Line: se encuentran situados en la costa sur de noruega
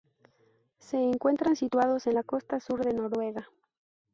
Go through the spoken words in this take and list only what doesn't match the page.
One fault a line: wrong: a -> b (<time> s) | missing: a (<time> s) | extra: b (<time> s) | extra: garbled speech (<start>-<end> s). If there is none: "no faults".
no faults